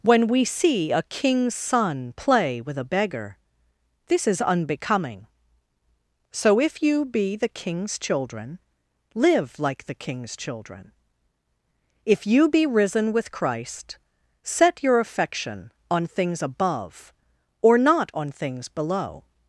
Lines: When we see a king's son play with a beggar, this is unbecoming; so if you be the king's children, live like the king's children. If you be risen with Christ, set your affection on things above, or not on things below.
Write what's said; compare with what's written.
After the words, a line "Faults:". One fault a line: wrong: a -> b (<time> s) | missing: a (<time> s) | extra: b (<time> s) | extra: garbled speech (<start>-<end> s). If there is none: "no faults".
When we see a king's son play with a beggar, this is unbecoming; so if you be the king's children, live like the king's children. If you be risen with Christ, set your affection on things above, or not on things below.
Faults:
no faults